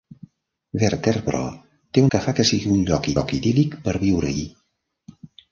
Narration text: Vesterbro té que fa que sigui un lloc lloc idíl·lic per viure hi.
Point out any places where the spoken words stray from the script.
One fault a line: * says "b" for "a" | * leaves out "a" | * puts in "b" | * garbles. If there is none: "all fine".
all fine